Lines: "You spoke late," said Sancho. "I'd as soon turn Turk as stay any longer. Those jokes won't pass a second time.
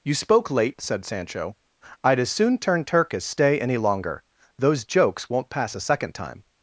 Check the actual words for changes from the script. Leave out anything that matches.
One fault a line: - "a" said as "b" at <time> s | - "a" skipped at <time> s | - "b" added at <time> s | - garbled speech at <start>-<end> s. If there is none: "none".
none